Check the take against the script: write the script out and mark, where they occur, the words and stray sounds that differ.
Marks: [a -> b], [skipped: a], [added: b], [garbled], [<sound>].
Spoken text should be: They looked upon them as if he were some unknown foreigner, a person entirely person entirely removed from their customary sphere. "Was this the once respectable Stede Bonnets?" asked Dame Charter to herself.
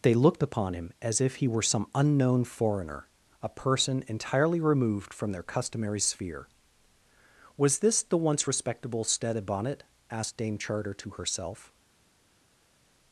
They looked upon [them -> him] as if he were some unknown foreigner, a person entirely [skipped: person entirely] removed from their customary sphere. "Was this the once respectable Stede [Bonnets?" -> Bonnet] asked Dame Charter to herself.